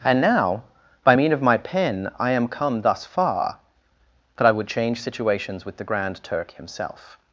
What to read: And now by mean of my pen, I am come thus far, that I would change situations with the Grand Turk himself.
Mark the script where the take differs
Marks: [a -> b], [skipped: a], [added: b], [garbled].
And now by mean of my pen, I am come thus far, that I would change situations with the Grand Turk himself.